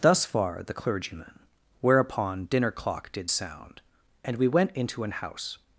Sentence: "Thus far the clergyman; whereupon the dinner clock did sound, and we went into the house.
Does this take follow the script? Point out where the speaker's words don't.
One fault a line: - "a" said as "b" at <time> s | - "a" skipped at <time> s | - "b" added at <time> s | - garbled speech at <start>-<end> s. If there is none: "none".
- "the" skipped at 2.5 s
- "the" said as "an" at 5.0 s